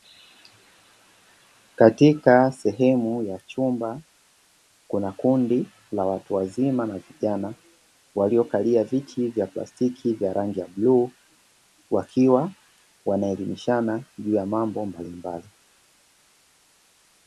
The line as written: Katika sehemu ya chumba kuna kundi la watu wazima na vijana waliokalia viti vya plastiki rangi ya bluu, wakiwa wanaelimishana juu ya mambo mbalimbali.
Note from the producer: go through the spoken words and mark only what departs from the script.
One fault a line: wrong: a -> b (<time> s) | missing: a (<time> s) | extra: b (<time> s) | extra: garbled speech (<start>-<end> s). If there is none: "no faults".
extra: vya (10.1 s)